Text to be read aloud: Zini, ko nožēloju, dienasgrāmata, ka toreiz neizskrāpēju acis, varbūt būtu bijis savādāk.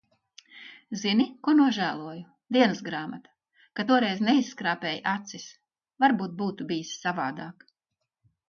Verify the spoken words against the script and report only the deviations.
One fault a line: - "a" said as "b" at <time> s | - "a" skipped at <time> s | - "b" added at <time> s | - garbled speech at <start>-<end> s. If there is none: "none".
none